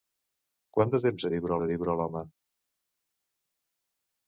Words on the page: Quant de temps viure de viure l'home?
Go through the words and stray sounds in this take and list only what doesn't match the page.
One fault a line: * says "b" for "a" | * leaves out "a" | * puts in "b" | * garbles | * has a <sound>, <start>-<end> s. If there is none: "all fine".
all fine